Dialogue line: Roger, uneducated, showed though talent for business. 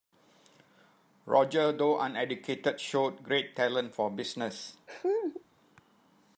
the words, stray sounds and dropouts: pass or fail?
fail